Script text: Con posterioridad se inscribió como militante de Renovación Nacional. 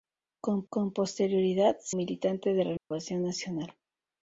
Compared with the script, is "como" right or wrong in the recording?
wrong